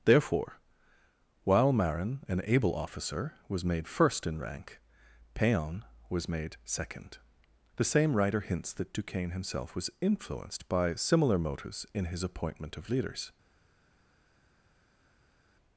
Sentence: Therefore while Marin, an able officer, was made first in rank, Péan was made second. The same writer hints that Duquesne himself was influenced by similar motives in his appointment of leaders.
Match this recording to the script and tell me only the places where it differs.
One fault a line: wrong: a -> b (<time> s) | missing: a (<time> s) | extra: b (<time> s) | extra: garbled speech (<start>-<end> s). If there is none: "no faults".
no faults